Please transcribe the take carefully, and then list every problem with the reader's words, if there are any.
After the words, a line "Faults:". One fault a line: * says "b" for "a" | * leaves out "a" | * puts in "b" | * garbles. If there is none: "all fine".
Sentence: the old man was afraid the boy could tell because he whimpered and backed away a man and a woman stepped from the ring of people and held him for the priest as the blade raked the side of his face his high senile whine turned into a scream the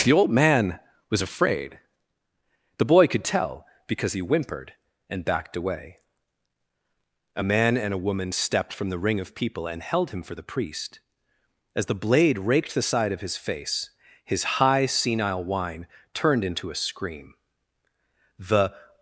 the old man was afraid the boy could tell because he whimpered and backed away a man and a woman stepped from the ring of people and held him for the priest as the blade raked the side of his face his high senile whine turned into a scream the
Faults:
all fine